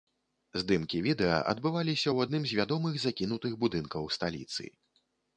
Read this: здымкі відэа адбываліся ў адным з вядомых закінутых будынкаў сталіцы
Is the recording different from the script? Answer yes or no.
no